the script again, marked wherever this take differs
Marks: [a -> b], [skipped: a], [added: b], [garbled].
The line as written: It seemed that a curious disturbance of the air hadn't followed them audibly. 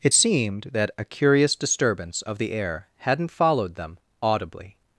It seemed that a curious disturbance of the air hadn't followed them audibly.